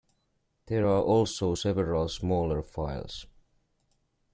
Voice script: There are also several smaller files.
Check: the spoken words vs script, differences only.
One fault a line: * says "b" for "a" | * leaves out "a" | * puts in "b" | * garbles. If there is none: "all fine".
all fine